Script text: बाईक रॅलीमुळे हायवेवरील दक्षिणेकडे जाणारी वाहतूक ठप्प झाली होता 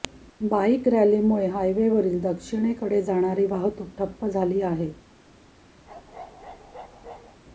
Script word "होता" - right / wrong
wrong